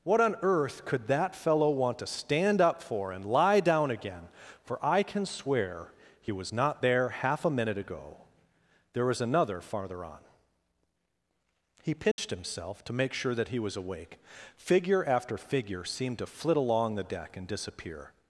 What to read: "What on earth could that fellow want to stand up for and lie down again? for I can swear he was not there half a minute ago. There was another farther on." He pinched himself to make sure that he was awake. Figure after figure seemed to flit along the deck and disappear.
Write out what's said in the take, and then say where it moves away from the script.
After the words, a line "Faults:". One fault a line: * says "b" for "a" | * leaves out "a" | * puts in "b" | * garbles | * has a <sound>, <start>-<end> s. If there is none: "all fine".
"What on earth could that fellow want to stand up for and lie down again? for I can swear he was not there half a minute ago. There was another farther on." He pinched himself to make sure that he was awake. Figure after figure seemed to flit along the deck and disappear.
Faults:
* has a dropout, 12.1-12.2 s